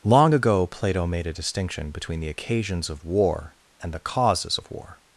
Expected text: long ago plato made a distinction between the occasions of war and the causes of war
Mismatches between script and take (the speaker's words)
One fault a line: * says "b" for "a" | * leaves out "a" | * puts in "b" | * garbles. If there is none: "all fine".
all fine